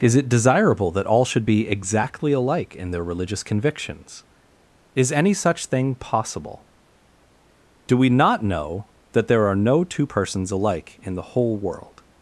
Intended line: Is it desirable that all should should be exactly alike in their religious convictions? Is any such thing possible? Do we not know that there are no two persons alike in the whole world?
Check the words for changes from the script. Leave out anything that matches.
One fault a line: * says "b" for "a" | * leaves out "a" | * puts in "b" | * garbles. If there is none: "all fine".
* leaves out "should"